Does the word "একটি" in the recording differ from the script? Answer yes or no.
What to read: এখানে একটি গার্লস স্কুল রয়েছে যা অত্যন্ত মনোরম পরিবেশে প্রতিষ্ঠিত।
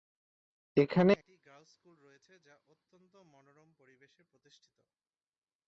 no